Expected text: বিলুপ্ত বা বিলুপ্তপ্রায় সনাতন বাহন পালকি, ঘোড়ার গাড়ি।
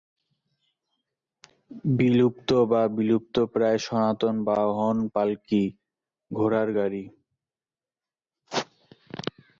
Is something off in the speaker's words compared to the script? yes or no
no